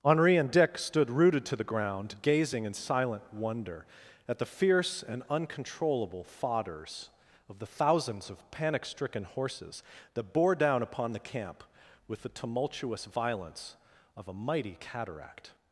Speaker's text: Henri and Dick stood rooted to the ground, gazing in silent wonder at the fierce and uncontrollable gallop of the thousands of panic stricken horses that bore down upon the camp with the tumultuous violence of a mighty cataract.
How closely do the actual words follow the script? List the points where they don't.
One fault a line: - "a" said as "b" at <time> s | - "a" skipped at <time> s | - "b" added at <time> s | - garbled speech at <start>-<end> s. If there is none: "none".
- "gallop" said as "fodders" at 6.2 s